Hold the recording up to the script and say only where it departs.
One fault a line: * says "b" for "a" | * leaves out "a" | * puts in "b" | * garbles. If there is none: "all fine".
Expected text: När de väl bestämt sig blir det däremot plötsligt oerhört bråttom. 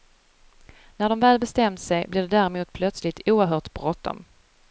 all fine